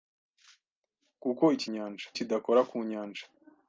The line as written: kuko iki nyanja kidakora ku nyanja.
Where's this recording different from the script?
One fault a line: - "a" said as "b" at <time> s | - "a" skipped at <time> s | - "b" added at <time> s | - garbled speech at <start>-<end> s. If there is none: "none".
none